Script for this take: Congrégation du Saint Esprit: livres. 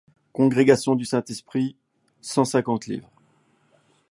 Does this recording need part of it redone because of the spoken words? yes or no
yes